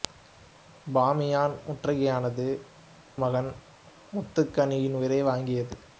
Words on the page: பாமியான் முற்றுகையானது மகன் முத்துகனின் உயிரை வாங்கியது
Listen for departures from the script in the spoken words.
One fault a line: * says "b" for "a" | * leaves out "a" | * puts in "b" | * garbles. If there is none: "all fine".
all fine